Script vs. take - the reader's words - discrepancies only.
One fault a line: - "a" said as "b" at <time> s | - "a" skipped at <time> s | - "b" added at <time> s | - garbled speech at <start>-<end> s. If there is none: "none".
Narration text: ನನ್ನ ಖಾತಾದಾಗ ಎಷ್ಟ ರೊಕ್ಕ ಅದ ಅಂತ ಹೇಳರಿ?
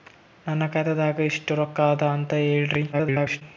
- garbled speech at 2.9-3.4 s